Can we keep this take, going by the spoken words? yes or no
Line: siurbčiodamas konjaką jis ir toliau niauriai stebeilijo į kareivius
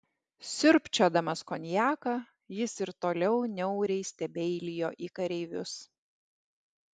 yes